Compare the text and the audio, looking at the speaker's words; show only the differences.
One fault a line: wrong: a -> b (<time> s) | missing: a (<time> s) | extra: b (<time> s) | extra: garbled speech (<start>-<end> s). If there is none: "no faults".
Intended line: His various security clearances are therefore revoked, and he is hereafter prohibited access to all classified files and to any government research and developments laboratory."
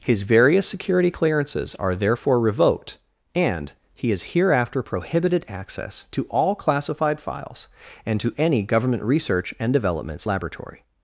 no faults